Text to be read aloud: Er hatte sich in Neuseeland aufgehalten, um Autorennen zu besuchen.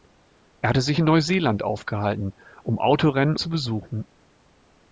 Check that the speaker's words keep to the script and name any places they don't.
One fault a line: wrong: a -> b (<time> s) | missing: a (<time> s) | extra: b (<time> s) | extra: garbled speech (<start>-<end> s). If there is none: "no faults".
no faults